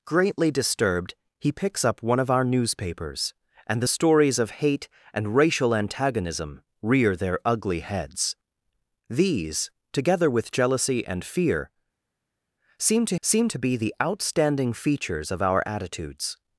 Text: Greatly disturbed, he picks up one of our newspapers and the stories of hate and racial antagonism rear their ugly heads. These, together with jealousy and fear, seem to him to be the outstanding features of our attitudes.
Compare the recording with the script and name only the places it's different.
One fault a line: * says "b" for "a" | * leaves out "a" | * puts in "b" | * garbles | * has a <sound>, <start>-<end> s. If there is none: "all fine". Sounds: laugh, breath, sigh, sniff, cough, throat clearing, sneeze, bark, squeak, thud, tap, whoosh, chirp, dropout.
* says "seem" for "him"